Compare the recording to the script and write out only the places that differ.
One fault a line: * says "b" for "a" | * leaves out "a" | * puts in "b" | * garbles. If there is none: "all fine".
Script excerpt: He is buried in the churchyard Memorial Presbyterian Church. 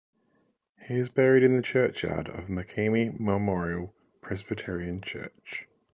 * puts in "of Makemie"